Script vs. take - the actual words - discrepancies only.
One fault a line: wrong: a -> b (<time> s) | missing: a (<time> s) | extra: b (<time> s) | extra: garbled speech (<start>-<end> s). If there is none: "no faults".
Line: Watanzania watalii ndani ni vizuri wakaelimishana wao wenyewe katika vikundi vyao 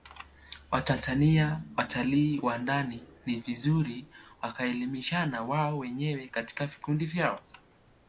extra: wa (2.4 s)